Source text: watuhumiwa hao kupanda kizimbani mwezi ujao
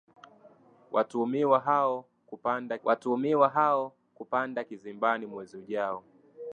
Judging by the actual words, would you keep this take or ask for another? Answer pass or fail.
fail